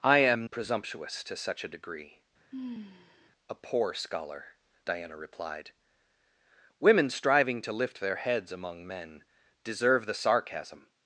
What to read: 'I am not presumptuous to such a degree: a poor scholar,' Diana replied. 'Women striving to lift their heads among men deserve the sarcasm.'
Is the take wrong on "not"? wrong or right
wrong